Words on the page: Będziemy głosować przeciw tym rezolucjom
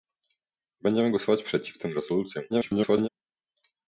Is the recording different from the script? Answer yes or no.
yes